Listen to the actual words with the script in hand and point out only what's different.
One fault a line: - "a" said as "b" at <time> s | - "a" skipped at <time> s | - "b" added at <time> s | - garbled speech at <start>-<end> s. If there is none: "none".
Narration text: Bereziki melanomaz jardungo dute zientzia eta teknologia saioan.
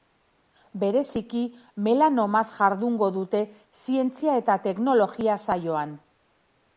none